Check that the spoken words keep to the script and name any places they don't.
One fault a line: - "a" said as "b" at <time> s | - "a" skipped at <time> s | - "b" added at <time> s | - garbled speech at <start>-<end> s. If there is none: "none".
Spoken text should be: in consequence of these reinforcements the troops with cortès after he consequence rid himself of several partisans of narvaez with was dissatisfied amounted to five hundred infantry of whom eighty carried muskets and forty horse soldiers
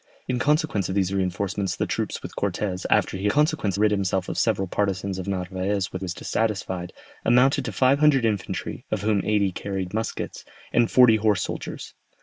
none